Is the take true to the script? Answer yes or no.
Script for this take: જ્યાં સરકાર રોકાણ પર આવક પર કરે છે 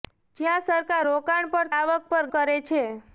yes